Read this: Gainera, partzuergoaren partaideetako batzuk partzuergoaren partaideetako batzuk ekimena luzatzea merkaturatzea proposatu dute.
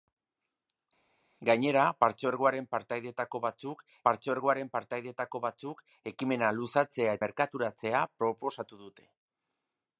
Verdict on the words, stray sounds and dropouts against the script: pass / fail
pass